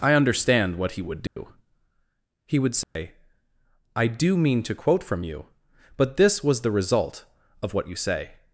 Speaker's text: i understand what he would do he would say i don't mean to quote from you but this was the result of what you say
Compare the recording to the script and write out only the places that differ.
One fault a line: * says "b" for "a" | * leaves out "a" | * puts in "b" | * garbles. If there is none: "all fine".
* says "do" for "don't"